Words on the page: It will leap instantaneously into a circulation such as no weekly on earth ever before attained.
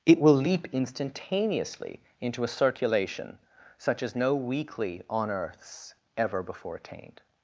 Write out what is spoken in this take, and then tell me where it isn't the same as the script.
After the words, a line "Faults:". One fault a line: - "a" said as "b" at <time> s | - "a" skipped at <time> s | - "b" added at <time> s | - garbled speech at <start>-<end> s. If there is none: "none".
It will leap instantaneously into a circulation such as no weekly on earths ever before attained.
Faults:
- "earth" said as "earths" at 5.3 s